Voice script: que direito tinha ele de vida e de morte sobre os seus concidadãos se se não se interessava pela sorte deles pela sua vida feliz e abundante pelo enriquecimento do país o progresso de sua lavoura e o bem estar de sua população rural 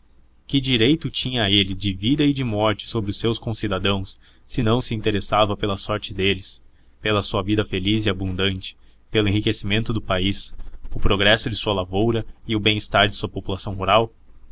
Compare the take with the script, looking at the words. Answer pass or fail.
fail